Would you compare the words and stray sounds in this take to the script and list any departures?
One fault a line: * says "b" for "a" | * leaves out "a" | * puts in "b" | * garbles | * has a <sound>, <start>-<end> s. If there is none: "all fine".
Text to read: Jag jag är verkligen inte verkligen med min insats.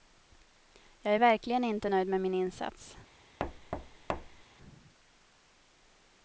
* leaves out "jag"
* says "nöjd" for "verkligen"
* has a thud, 3.4-4.4 s